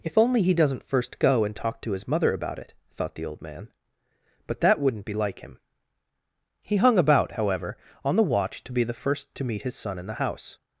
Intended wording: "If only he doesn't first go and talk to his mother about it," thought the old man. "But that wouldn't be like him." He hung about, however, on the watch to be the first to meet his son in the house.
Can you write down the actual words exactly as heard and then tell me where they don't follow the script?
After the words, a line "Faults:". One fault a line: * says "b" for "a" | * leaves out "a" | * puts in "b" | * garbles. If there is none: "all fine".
"If only he doesn't first go and talk to his mother about it," thought the old man. "But that wouldn't be like him." He hung about, however, on the watch to be the first to meet his son in the house.
Faults:
all fine